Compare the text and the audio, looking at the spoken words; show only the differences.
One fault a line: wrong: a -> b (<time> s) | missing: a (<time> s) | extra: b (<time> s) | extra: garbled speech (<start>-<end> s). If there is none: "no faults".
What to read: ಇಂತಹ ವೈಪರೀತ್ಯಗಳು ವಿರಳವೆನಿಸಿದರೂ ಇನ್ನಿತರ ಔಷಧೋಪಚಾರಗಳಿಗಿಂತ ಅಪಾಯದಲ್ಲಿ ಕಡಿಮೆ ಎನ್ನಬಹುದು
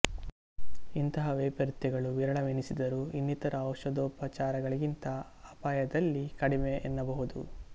no faults